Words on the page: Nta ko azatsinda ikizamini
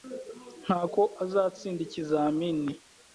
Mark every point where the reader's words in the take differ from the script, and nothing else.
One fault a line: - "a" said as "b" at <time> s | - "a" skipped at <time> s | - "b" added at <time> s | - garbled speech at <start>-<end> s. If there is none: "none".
none